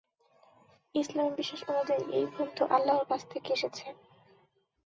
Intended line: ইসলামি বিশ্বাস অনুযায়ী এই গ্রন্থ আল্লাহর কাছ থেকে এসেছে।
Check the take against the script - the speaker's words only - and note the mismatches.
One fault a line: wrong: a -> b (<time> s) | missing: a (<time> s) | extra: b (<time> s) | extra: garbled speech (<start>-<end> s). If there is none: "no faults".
no faults